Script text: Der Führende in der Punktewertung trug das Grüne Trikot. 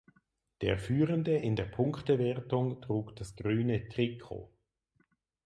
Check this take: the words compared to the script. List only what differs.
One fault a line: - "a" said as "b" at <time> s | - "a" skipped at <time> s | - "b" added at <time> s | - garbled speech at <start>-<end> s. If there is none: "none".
none